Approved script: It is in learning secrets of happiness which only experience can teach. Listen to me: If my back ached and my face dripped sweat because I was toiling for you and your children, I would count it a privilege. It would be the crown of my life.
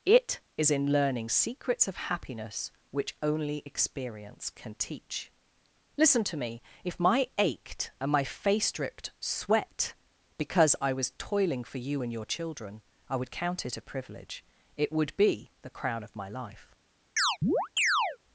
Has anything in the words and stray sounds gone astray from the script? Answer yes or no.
yes